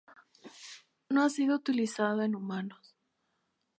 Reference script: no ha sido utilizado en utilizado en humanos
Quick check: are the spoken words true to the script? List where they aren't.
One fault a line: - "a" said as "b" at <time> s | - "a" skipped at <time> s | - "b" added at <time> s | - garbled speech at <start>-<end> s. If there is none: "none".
- "utilizado en" skipped at 2.4 s